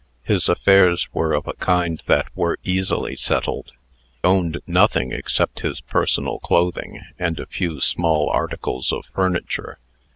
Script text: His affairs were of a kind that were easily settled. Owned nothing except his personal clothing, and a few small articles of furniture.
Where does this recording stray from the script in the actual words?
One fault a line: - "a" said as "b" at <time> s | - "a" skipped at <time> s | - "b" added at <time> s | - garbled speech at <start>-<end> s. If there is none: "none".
none